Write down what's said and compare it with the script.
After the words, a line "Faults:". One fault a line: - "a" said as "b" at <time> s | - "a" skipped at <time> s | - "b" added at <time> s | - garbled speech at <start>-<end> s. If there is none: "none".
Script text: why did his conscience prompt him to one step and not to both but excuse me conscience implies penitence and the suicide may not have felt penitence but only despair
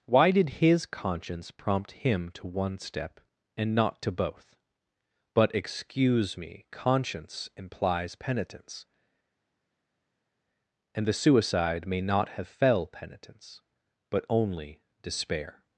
why did his conscience prompt him to one step and not to both but excuse me conscience implies penitence and the suicide may not have fell penitence but only despair
Faults:
- "felt" said as "fell" at 12.5 s